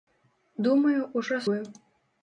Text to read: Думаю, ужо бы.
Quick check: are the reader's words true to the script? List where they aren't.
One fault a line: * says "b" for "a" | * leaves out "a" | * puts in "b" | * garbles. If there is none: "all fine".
all fine